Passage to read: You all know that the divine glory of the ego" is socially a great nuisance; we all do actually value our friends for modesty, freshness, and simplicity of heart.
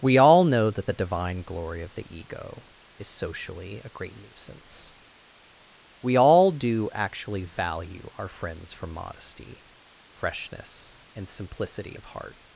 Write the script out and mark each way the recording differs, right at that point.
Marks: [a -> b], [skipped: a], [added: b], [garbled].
[You -> We] all know that the divine glory of the ego" is socially a great nuisance; we all do actually value our friends for modesty, freshness, and simplicity of heart.